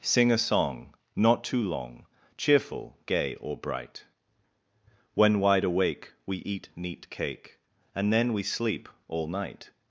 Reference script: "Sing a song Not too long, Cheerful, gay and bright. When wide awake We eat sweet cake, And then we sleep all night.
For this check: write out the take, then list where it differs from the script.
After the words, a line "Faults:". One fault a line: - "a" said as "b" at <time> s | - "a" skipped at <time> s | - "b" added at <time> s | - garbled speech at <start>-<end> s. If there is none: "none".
"Sing a song Not too long, Cheerful, gay or bright. When wide awake We eat neat cake, And then we sleep all night.
Faults:
- "and" said as "or" at 3.4 s
- "sweet" said as "neat" at 6.8 s